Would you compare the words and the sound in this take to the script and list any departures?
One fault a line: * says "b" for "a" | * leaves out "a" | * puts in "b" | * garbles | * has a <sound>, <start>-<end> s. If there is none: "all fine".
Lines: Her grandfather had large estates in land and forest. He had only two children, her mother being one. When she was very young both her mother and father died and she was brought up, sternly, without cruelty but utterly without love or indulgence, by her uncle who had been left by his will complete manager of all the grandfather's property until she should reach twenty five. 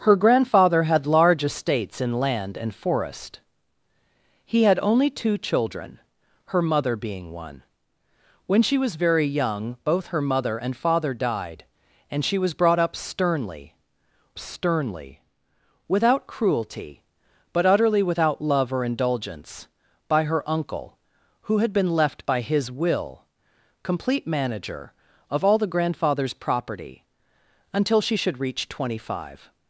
* puts in "sternly"